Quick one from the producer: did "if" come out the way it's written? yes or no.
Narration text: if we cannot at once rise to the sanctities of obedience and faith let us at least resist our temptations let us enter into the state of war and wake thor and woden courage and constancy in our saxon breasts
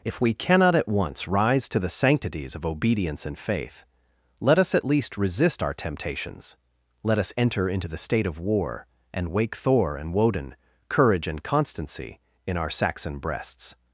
yes